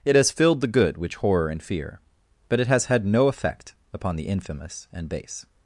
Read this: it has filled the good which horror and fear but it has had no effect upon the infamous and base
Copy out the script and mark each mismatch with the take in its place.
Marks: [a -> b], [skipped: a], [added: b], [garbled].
it has filled the good which horror and fear but it has had no effect upon the infamous and base